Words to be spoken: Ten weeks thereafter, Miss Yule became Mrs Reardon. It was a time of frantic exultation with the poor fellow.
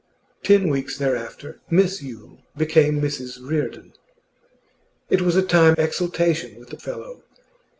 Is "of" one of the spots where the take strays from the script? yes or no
yes